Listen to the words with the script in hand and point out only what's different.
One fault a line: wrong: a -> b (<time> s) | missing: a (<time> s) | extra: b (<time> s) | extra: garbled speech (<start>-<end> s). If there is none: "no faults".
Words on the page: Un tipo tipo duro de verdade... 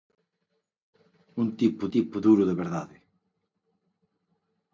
no faults